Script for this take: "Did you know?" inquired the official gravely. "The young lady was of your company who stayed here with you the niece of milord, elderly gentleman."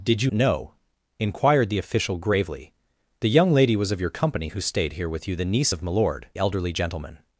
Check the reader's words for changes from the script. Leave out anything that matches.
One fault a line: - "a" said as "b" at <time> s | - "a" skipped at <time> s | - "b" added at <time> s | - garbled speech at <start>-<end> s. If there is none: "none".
none